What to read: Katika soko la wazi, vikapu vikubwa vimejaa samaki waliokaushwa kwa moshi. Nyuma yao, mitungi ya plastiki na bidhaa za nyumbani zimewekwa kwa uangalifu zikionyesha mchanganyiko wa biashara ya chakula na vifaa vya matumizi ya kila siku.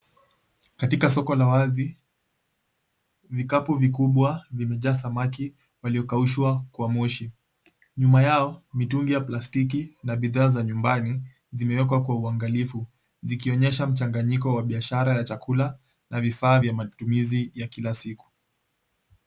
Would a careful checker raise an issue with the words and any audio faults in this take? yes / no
no